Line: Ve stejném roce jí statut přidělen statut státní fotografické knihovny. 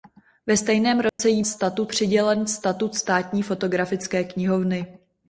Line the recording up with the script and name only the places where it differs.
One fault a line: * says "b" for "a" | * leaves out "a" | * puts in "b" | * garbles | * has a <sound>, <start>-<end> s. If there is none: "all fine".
* has a dropout, 1.1-1.2 s